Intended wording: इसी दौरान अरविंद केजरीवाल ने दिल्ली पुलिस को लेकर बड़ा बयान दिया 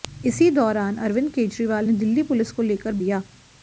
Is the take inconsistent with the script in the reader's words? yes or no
yes